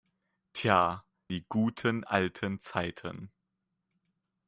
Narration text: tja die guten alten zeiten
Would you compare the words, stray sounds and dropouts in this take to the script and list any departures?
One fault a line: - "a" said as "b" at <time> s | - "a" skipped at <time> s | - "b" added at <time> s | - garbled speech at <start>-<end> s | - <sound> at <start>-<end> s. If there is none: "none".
none